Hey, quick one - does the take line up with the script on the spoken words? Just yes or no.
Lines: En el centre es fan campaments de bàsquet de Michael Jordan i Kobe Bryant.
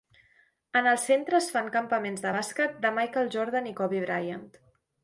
yes